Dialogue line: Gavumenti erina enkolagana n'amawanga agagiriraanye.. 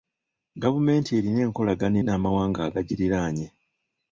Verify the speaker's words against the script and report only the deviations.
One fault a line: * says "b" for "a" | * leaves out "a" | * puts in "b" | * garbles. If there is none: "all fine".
all fine